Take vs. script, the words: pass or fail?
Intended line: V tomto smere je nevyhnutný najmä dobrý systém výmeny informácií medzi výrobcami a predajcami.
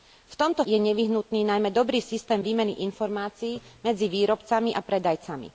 fail